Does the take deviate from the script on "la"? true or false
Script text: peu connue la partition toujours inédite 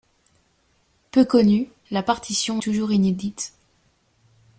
false